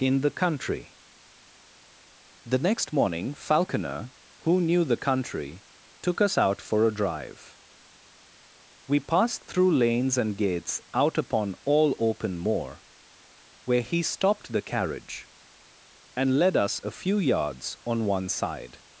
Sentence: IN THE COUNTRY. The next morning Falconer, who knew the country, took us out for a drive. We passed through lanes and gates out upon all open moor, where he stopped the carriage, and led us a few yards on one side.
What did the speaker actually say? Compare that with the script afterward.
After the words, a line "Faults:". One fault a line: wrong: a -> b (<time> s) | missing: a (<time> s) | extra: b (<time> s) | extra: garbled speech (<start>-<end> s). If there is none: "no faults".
IN THE COUNTRY. The next morning Falconer, who knew the country, took us out for a drive. We passed through lanes and gates out upon all open moor, where he stopped the carriage, and led us a few yards on one side.
Faults:
no faults